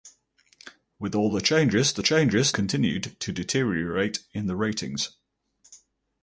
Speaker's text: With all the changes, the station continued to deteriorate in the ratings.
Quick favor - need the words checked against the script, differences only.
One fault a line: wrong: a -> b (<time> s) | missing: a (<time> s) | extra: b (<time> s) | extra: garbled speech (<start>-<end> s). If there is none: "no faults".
wrong: station -> changes (2.0 s)